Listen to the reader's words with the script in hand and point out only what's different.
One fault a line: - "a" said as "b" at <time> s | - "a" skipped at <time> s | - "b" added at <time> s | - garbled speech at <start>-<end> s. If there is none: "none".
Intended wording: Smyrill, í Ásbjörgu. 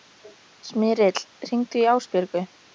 - "hringdu" added at 1.5 s